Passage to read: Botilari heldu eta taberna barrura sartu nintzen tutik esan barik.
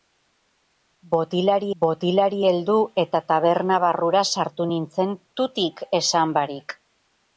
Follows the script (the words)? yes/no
no